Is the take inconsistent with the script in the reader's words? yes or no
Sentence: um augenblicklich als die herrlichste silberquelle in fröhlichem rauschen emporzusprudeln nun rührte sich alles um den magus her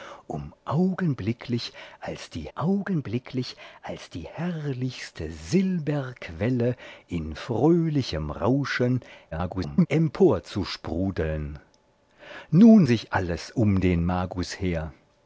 yes